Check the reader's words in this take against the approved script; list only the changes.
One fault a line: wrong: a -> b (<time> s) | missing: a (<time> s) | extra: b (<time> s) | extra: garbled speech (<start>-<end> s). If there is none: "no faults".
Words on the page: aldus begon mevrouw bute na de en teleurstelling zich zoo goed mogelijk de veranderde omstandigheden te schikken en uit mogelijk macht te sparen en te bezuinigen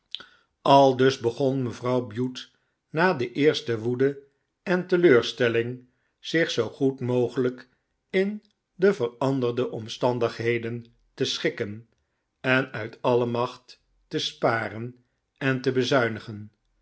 extra: eerste woede (3.3 s)
extra: in (8.1 s)
wrong: mogelijk -> alle (13.0 s)